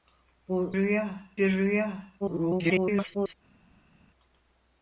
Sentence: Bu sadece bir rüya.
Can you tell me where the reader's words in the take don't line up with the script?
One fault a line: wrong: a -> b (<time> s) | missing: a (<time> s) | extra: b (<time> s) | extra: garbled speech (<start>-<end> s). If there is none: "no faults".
wrong: sadece -> rüya (0.7 s)
extra: garbled speech (2.2-3.3 s)